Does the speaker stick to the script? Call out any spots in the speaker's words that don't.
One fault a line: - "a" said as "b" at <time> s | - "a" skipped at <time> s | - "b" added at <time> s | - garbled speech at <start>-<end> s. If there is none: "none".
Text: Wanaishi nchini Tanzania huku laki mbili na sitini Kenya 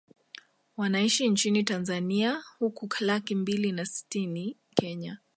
none